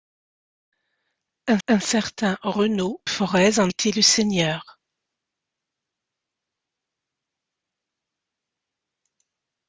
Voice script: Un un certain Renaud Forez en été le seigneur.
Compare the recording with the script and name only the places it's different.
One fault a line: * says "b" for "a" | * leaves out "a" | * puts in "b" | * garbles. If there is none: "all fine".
all fine